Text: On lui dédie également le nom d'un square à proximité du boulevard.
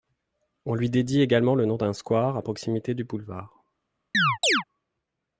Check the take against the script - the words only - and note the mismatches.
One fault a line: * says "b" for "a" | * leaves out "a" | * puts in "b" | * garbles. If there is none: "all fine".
all fine